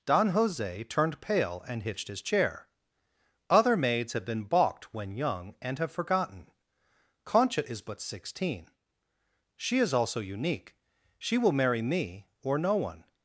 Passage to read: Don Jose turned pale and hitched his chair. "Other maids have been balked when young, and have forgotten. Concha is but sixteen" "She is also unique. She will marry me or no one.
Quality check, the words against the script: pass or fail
pass